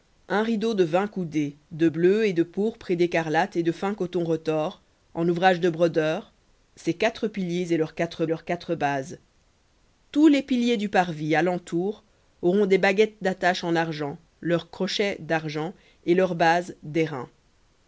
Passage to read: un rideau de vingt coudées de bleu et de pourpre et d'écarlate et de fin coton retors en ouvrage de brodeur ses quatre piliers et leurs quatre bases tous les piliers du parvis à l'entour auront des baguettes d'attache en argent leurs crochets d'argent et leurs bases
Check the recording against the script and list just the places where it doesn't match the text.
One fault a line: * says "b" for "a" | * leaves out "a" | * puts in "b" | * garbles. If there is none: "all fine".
* puts in "leurs quatre"